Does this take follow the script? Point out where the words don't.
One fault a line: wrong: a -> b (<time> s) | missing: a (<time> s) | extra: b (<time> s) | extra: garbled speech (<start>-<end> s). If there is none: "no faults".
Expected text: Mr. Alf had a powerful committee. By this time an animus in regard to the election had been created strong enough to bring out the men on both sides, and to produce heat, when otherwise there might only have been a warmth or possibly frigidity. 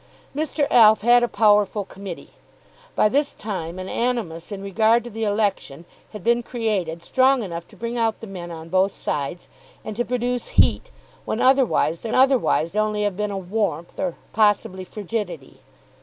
wrong: might -> otherwise (12.1 s)